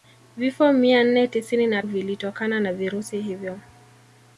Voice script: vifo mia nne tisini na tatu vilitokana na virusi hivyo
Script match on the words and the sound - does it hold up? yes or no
no